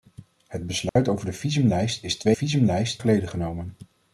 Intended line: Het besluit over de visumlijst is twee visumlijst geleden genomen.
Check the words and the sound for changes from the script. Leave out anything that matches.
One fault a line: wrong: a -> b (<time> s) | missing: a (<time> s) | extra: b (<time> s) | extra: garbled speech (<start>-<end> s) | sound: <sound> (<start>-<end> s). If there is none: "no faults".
sound: dropout (0.9-1.0 s)